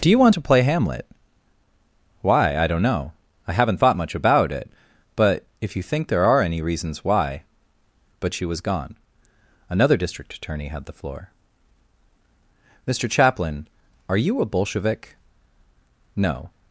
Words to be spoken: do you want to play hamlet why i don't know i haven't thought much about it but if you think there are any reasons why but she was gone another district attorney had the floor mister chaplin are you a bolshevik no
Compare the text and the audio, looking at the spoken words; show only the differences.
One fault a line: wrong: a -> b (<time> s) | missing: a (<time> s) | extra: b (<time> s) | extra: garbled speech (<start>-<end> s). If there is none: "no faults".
no faults